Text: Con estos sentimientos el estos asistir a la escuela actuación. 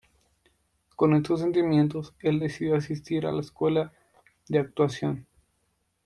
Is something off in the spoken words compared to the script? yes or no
yes